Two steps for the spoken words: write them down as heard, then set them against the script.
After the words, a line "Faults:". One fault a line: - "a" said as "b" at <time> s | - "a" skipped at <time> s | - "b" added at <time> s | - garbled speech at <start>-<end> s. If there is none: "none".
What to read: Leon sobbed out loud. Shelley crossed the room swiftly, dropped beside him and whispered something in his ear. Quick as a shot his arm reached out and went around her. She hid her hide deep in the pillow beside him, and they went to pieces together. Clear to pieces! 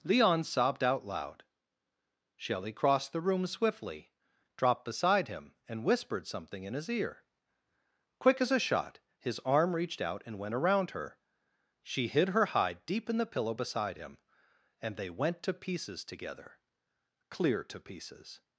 Leon sobbed out loud. Shelley crossed the room swiftly, dropped beside him and whispered something in his ear. Quick as a shot his arm reached out and went around her. She hid her hide deep in the pillow beside him, and they went to pieces together. Clear to pieces!
Faults:
none